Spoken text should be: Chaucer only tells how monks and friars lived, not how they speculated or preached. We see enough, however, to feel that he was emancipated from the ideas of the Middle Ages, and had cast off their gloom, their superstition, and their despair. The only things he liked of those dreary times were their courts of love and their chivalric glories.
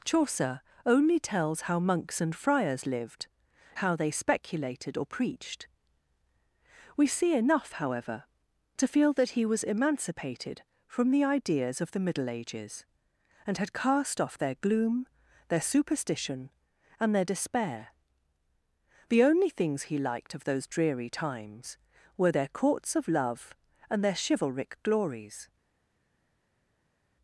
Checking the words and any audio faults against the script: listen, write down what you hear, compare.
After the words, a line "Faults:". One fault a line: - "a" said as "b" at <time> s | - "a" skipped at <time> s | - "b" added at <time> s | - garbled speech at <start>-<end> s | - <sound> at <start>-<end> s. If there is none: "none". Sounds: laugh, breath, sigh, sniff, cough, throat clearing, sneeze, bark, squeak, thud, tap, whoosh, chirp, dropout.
Chaucer only tells how monks and friars lived, how they speculated or preached. We see enough, however, to feel that he was emancipated from the ideas of the Middle Ages, and had cast off their gloom, their superstition, and their despair. The only things he liked of those dreary times were their courts of love and their chivalric glories.
Faults:
- "not" skipped at 3.3 s